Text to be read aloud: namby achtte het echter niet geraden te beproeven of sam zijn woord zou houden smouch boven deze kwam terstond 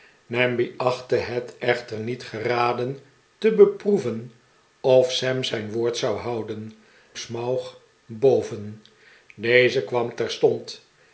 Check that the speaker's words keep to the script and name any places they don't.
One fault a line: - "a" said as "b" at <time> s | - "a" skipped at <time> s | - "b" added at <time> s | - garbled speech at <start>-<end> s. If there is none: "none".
none